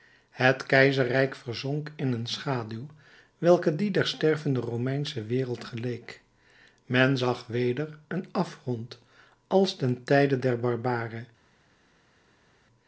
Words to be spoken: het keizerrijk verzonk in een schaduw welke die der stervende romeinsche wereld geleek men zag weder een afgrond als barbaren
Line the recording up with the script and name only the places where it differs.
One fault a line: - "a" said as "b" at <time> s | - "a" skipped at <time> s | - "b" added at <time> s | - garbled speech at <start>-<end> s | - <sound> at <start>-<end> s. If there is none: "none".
- "ten tijde der" added at 9.8 s